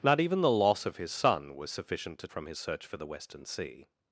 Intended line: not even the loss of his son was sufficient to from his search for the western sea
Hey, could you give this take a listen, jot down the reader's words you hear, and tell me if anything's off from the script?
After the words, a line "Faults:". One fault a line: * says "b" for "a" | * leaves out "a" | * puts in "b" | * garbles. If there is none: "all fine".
not even the loss of his son was sufficient to from his search for the western sea
Faults:
all fine